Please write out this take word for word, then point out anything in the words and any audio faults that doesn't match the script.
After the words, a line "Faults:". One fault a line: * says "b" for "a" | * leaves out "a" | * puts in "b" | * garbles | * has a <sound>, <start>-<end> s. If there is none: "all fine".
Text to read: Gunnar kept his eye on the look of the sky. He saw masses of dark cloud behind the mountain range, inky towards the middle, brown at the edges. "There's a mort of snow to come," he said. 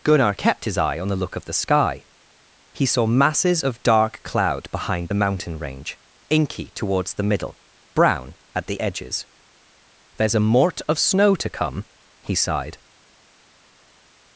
Gunnar kept his eye on the look of the sky. He saw masses of dark cloud behind the mountain range, inky towards the middle, brown at the edges. "There's a mort of snow to come," he sighed.
Faults:
* says "sighed" for "said"